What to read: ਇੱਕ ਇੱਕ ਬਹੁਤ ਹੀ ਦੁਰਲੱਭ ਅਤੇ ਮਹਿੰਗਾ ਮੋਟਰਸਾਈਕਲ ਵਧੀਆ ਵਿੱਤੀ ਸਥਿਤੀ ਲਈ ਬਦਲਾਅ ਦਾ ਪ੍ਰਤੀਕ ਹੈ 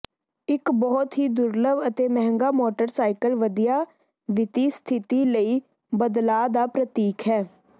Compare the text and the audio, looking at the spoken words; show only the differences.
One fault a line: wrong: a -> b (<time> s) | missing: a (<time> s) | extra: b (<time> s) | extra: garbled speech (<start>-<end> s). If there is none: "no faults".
missing: ਇੱਕ (0.7 s)